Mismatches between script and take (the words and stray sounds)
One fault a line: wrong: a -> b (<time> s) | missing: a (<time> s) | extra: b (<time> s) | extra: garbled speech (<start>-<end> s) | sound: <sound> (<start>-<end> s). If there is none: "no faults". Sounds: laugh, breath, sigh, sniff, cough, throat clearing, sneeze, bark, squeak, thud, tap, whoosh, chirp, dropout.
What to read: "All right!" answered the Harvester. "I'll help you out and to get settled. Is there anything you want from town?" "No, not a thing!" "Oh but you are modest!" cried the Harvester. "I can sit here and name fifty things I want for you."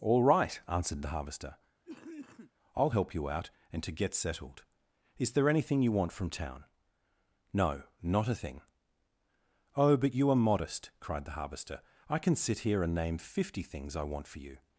sound: cough (1.8-2.5 s)